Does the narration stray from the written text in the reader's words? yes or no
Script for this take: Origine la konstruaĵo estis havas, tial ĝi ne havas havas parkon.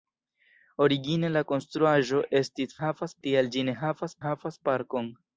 no